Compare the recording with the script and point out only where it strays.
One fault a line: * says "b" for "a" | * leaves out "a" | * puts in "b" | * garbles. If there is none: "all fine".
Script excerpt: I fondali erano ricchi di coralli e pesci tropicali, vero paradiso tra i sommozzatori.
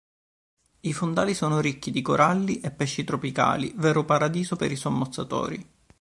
* says "sono" for "erano"
* says "per" for "tra"